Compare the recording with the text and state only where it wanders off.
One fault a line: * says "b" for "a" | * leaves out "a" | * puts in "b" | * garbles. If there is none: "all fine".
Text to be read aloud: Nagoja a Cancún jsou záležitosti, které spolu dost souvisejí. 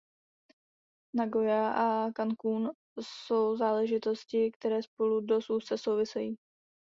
* puts in "úzce"